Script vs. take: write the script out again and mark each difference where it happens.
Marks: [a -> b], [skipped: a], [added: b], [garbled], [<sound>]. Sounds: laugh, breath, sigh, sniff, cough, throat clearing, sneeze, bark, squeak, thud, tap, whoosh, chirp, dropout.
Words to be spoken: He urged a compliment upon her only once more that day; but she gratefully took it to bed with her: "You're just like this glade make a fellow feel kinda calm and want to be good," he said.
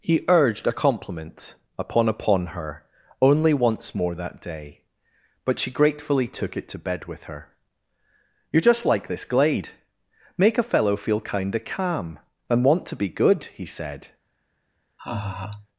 He urged a compliment upon [added: upon] her only once more that day; but she gratefully took it to bed with her: "You're just like this glade make a fellow feel kinda calm and want to be good," he said. [laugh]